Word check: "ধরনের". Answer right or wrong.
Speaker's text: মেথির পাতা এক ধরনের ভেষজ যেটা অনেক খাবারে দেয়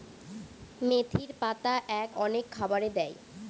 wrong